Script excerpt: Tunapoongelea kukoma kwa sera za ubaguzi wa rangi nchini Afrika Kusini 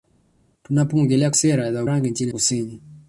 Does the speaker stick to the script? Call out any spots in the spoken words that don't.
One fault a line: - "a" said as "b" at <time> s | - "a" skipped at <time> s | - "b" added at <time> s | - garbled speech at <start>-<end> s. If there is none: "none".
- "kukoma kwa" skipped at 1.3 s
- "ubaguzi wa" skipped at 1.8 s
- "Afrika" skipped at 2.3 s